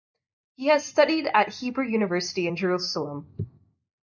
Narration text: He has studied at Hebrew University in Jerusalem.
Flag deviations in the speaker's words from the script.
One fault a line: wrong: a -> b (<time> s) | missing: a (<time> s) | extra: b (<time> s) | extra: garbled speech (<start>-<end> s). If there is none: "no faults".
no faults